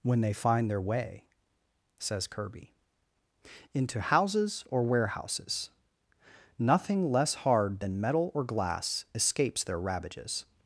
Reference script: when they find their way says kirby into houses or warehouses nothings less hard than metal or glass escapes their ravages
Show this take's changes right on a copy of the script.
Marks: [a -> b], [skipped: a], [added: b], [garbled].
when they find their way says kirby into houses or warehouses [nothings -> nothing] less hard than metal or glass escapes their ravages